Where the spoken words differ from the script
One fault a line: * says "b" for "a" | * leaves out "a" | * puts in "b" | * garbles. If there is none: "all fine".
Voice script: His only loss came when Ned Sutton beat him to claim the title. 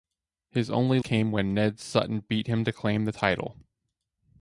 * leaves out "loss"